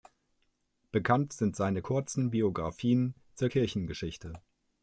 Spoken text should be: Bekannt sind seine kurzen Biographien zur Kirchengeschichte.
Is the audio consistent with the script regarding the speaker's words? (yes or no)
yes